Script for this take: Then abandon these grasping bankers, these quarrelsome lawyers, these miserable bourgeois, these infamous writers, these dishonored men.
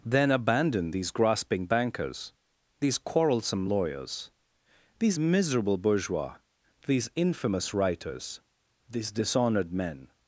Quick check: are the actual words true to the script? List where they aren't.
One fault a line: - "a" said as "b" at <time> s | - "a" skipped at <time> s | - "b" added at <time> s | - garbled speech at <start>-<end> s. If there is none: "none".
none